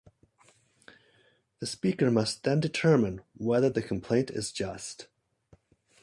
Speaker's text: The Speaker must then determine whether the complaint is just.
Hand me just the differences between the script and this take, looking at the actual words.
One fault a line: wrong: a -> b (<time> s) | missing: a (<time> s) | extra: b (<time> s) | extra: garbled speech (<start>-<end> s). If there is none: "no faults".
no faults